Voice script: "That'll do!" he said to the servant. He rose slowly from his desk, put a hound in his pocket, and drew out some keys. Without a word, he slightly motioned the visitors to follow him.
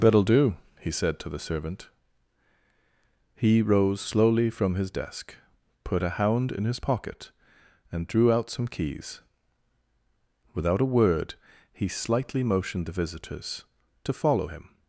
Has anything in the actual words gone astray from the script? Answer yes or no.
no